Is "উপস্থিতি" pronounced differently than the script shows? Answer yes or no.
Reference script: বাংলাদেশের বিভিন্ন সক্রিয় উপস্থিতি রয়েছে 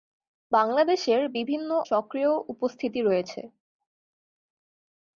no